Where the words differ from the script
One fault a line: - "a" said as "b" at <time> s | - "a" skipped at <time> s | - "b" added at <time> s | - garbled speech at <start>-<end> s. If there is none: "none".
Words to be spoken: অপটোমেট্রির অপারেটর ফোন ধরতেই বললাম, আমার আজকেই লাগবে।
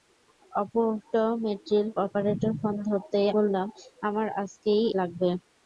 none